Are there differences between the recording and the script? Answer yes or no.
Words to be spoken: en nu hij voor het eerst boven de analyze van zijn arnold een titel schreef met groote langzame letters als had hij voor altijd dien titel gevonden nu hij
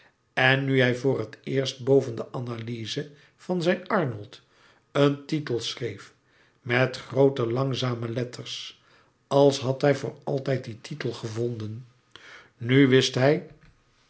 yes